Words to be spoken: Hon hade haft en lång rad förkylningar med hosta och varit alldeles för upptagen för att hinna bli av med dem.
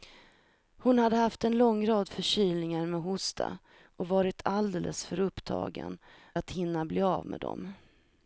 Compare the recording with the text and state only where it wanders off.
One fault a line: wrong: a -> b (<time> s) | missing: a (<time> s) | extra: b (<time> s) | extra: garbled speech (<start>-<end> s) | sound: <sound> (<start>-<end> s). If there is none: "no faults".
missing: för (6.0 s)